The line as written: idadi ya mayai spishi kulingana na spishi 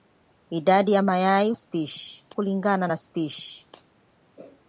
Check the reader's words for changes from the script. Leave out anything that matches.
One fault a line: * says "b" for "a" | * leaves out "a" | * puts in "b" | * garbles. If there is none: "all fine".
all fine